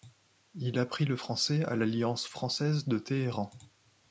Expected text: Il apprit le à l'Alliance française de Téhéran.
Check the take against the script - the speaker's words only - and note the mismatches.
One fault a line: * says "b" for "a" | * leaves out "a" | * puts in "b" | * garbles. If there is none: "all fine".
* puts in "français"